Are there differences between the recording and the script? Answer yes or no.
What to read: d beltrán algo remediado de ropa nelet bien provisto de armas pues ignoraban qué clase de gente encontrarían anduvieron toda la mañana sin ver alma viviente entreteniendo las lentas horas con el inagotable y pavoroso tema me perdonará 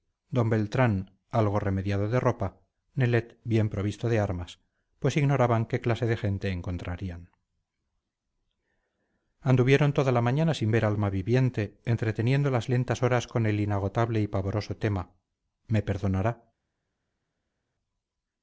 no